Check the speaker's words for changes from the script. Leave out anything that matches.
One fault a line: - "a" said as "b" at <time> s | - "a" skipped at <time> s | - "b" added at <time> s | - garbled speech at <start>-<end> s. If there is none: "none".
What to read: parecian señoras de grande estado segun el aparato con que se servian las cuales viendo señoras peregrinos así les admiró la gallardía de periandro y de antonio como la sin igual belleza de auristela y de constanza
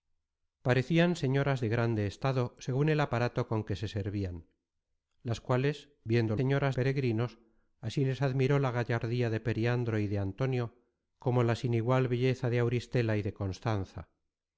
none